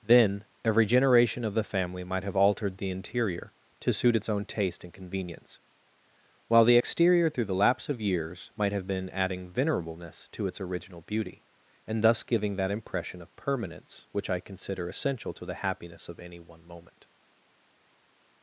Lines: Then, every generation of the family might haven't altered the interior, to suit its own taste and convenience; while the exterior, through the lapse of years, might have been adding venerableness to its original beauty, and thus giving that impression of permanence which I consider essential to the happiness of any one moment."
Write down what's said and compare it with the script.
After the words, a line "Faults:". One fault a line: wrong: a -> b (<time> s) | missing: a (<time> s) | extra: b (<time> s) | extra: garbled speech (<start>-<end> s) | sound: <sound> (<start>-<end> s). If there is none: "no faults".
Then, every generation of the family might have altered the interior, to suit its own taste and convenience; while the exterior, through the lapse of years, might have been adding venerableness to its original beauty, and thus giving that impression of permanence which I consider essential to the happiness of any one moment."
Faults:
wrong: haven't -> have (2.2 s)